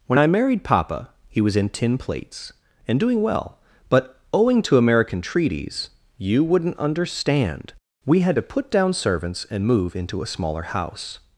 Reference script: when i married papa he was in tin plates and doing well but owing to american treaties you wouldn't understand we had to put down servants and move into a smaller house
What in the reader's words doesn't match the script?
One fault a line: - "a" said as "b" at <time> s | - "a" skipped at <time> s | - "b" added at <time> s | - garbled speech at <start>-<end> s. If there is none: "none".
none